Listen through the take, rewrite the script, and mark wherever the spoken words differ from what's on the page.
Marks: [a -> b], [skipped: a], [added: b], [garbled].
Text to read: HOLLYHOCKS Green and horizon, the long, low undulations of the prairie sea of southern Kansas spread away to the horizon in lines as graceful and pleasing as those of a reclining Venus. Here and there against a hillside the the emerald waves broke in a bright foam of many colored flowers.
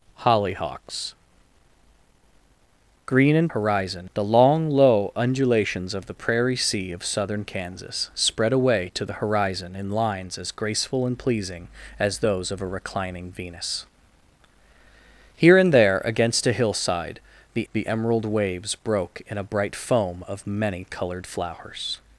HOLLYHOCKS Green and horizon, the long, low undulations of the prairie sea of southern Kansas spread away to the horizon in lines as graceful and pleasing as those of a reclining Venus. Here and there against a hillside the the emerald waves broke in a bright foam of many colored flowers.